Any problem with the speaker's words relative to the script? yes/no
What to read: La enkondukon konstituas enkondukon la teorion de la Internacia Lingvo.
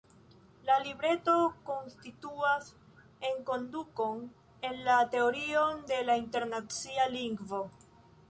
yes